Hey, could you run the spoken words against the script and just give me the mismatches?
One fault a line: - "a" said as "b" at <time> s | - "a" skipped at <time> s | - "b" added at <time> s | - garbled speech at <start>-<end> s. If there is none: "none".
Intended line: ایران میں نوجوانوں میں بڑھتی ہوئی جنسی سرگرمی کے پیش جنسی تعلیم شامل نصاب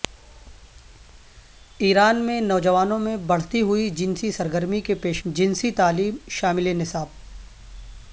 none